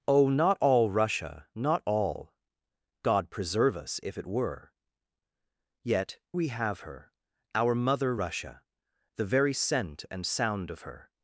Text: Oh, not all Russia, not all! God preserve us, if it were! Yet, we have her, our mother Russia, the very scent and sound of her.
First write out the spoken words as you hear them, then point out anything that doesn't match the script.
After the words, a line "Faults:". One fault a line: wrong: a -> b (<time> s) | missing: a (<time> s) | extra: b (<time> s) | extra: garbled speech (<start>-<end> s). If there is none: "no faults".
Oh, not all Russia, not all! God preserve us, if it were! Yet, we have her, our mother Russia, the very scent and sound of her.
Faults:
no faults